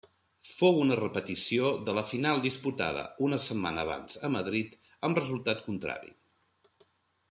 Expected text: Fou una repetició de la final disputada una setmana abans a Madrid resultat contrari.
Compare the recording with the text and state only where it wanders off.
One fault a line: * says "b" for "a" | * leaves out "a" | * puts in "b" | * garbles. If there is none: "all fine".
* puts in "amb"